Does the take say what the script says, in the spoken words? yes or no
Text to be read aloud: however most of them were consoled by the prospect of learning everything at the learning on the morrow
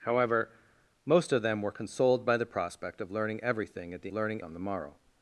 yes